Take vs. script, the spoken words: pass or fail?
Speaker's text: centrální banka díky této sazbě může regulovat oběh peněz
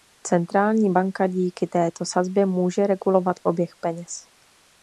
pass